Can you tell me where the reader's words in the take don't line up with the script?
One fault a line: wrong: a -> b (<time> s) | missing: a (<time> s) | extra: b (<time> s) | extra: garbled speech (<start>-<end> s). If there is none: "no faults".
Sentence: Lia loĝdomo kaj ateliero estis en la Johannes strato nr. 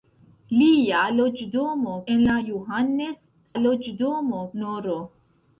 missing: kaj ateliero estis (2.0 s)
wrong: strato -> loĝdomo (3.6 s)